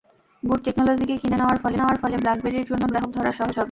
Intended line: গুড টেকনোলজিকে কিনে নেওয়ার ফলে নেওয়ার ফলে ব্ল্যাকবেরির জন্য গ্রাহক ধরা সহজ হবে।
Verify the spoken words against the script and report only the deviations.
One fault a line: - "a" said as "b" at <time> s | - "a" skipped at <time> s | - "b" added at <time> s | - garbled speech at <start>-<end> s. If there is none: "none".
none